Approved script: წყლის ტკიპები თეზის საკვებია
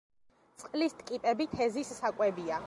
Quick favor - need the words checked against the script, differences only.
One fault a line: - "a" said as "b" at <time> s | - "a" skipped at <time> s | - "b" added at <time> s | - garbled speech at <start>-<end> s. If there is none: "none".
none